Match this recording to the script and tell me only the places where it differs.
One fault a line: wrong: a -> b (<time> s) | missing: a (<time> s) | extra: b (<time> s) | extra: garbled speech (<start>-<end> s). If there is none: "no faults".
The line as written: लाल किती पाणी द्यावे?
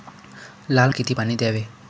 no faults